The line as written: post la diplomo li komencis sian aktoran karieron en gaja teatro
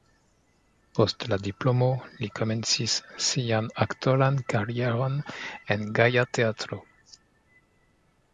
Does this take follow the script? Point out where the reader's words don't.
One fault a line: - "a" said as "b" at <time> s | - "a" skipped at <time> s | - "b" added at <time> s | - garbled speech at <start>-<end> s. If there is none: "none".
none